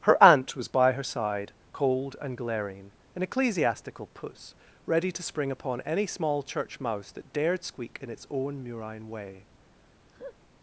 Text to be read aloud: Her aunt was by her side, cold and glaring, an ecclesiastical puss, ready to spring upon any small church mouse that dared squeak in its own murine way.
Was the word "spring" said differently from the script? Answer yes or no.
no